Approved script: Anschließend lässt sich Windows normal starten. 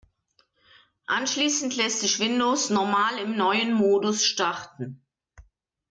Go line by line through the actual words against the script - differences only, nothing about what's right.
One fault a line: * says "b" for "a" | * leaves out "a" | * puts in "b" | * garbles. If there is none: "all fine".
* puts in "im neuen Modus"